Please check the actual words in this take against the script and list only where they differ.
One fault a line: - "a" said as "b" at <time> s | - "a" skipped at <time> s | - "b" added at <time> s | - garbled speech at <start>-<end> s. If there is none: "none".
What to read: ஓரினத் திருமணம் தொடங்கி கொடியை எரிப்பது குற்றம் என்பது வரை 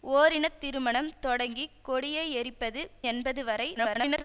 - "குற்றம்" skipped at 2.8 s
- garbled speech at 3.8-4.2 s